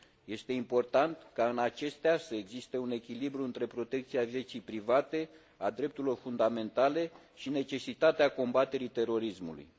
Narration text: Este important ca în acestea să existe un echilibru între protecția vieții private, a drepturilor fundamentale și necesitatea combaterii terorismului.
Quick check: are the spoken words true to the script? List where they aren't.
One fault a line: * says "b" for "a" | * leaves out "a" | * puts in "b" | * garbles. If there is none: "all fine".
all fine